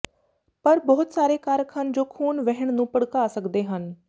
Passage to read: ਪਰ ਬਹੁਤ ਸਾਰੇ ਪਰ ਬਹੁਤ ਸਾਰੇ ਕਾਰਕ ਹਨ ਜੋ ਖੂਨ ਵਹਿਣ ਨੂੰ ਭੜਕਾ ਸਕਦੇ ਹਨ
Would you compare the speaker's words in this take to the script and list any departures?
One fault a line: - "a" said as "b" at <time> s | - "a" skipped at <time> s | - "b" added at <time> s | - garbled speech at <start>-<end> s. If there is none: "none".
- "ਪਰ ਬਹੁਤ ਸਾਰੇ" skipped at 1.4 s